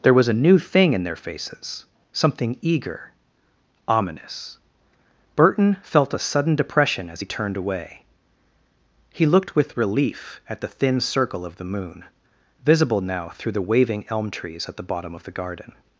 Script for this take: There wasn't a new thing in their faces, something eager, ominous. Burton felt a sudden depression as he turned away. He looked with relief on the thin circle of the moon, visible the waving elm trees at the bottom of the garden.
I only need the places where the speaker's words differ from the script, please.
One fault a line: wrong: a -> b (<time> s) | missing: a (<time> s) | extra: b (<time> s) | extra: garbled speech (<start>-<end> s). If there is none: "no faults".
wrong: wasn't -> was (0.1 s)
wrong: on -> at (10.5 s)
extra: now through (13.0 s)